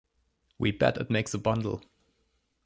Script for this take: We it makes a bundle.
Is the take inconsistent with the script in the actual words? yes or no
yes